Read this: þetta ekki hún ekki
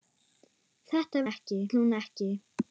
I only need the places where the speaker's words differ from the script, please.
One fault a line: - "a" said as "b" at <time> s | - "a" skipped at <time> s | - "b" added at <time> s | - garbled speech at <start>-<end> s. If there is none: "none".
none